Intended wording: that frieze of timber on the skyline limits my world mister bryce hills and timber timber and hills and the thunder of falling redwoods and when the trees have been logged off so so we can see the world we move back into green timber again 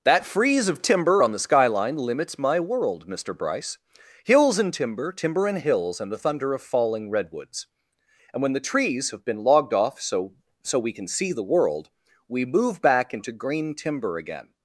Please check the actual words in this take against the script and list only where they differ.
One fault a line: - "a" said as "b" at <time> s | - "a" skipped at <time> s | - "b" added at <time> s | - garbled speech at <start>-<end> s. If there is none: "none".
none